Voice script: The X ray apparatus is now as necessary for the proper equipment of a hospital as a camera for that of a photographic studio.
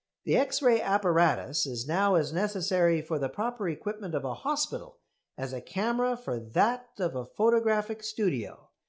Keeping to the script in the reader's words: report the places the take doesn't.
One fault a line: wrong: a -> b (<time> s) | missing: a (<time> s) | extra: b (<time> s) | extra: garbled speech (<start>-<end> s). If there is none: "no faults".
no faults